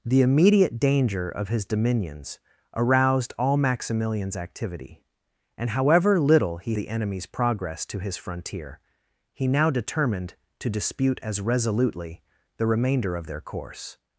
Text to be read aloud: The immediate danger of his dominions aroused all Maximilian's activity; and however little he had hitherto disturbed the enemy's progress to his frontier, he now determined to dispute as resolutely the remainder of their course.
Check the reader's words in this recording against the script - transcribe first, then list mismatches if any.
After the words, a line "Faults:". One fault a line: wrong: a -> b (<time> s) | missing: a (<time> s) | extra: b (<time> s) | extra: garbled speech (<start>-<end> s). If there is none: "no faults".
The immediate danger of his dominions aroused all Maximilian's activity; and however little he the enemy's progress to his frontier, he now determined to dispute as resolutely the remainder of their course.
Faults:
missing: had hitherto disturbed (6.8 s)